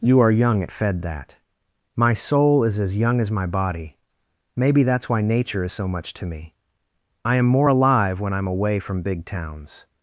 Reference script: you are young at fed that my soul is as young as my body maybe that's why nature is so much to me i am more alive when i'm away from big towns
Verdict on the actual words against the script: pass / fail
pass